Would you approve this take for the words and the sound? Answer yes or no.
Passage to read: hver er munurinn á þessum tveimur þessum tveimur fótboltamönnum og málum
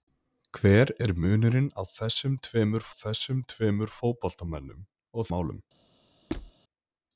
no